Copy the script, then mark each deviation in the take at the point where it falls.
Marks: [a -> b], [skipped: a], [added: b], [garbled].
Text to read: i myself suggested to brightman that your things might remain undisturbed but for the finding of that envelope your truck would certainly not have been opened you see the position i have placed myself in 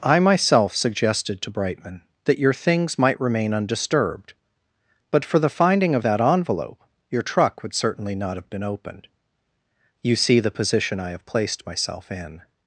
i myself suggested to brightman that your things might remain undisturbed but for the finding of that envelope your truck would certainly not have been opened you see the position i have placed myself in